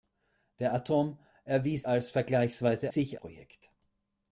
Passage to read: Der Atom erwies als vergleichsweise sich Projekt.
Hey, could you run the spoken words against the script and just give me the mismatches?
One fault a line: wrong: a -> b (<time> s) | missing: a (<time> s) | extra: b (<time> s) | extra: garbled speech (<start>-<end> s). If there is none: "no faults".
no faults